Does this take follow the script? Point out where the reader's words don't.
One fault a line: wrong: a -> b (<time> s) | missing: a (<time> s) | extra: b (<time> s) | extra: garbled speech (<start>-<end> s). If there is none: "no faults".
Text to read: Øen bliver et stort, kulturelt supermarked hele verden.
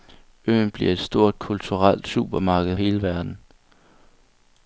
no faults